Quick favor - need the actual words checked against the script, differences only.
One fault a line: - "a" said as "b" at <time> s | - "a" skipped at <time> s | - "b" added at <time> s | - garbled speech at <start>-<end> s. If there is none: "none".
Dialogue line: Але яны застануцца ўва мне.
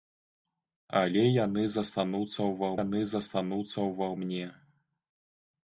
- "яны застануцца ўва" added at 2.8 s